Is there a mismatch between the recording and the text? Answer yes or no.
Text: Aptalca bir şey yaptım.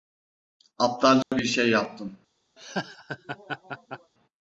no